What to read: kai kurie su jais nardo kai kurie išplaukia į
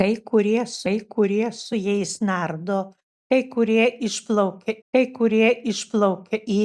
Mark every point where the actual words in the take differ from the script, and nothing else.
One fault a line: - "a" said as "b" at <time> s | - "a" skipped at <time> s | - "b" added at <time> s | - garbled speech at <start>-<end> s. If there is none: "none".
- "kai kurie su" added at 0.8 s
- "kai kurie išplaukia" added at 4.9 s